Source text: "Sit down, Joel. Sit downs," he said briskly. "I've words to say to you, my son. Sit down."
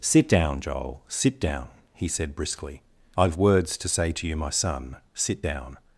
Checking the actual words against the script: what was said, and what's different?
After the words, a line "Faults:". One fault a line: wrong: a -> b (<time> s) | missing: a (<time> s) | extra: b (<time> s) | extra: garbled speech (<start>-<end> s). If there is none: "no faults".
"Sit down, Joel. Sit down," he said briskly. "I've words to say to you, my son. Sit down."
Faults:
wrong: downs -> down (1.4 s)